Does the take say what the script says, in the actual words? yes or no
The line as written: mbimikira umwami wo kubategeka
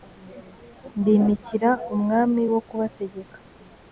yes